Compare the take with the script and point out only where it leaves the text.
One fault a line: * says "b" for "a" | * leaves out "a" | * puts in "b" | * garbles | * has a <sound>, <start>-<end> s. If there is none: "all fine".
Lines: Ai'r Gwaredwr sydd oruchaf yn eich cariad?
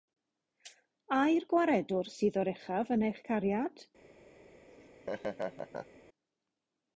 * has a laugh, 4.7-6.0 s